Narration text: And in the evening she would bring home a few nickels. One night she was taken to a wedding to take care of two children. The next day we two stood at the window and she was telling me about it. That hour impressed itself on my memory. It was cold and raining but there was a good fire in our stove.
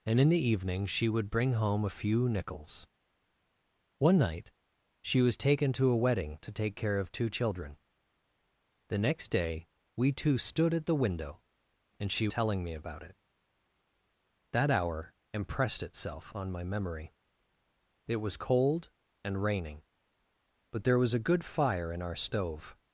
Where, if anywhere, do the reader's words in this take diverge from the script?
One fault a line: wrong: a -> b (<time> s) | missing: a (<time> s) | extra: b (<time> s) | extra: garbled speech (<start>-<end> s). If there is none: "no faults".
missing: was (12.3 s)